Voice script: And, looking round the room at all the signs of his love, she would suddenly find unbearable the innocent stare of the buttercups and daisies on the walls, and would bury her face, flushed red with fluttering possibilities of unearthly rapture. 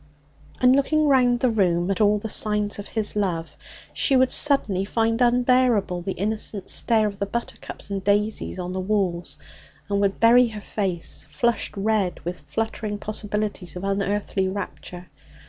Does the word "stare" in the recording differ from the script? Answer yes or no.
no